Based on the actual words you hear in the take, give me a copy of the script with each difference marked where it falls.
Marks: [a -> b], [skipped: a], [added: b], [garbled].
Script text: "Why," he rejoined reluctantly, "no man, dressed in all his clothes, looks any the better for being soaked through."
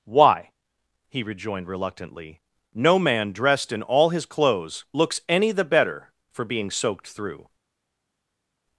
"Why," he rejoined reluctantly, "no man, dressed in all his clothes, looks any the better for being soaked through."